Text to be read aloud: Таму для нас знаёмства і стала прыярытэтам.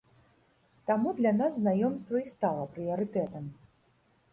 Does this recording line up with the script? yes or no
yes